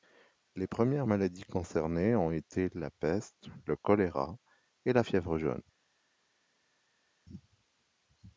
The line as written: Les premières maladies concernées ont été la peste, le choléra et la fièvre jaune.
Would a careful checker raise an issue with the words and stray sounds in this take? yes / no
no